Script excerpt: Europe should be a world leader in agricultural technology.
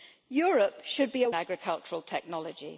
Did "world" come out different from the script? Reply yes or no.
yes